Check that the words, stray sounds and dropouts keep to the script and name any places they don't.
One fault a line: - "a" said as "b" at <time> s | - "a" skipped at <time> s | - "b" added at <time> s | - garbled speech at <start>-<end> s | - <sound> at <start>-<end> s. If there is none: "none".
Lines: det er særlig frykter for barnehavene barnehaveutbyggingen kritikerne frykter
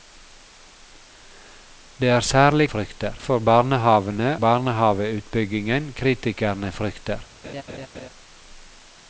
- laugh at 7.4-8.1 s